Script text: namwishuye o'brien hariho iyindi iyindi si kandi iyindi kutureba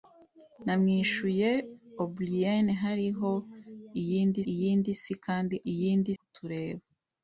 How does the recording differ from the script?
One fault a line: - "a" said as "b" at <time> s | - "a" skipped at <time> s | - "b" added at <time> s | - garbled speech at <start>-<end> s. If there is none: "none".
none